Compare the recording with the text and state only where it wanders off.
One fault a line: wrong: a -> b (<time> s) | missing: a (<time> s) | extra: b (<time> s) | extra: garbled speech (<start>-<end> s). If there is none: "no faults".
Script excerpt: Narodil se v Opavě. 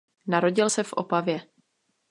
no faults